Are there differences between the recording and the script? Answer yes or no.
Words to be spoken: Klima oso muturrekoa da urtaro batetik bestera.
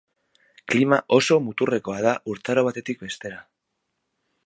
no